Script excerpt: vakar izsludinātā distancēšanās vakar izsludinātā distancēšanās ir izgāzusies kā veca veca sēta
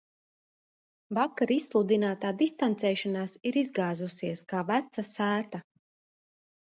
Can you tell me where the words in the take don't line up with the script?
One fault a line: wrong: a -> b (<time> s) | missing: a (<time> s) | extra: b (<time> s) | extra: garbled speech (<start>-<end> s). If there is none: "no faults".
missing: vakar izsludinātā distancēšanās (3.4 s)
missing: veca (5.0 s)